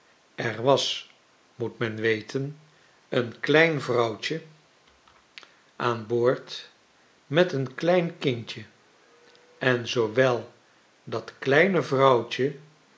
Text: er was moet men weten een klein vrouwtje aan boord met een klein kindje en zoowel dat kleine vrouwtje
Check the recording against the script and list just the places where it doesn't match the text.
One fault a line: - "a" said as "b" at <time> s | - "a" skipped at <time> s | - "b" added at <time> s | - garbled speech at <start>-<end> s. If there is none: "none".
none